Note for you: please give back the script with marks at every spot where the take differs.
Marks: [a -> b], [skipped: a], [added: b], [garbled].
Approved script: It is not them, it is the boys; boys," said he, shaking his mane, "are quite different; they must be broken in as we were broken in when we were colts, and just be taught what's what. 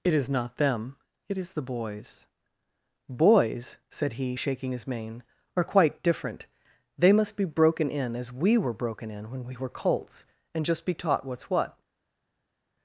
It is not them, it is the boys; boys," said he, shaking his mane, "are quite different; they must be broken in as we were broken in when we were colts, and just be taught what's what.